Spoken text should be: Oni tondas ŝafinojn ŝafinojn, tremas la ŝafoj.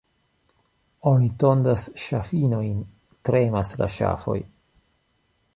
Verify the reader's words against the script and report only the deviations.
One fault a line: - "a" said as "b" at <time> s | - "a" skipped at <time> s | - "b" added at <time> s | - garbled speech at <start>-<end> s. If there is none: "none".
- "ŝafinojn" skipped at 2.8 s